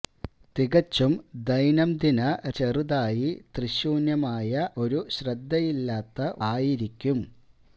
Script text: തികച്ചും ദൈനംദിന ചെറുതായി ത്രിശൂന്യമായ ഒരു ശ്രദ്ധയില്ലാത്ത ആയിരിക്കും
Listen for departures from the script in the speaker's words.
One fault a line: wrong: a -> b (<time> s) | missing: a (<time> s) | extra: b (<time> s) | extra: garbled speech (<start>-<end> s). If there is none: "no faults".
no faults